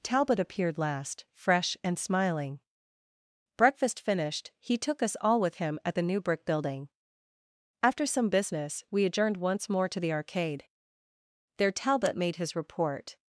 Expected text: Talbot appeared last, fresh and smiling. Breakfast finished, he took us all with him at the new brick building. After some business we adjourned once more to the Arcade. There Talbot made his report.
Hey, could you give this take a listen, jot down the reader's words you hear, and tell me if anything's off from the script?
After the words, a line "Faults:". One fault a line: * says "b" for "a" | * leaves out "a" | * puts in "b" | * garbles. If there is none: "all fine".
Talbot appeared last, fresh and smiling. Breakfast finished, he took us all with him at the new brick building. After some business we adjourned once more to the Arcade. There Talbot made his report.
Faults:
all fine